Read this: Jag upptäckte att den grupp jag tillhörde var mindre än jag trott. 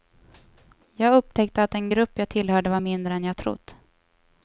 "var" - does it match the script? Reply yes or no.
yes